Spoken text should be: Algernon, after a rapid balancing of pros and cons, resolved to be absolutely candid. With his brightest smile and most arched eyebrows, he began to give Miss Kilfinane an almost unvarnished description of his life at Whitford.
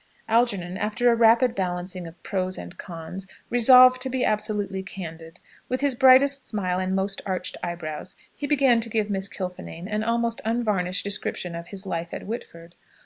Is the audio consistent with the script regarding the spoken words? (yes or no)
yes